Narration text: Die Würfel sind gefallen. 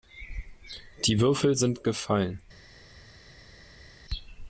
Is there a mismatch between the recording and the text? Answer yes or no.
no